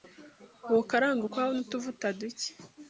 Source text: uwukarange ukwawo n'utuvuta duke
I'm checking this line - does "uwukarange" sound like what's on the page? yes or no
yes